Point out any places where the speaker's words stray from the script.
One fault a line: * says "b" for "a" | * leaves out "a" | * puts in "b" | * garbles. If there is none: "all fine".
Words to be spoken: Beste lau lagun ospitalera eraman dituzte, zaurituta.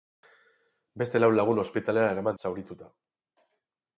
* leaves out "dituzte"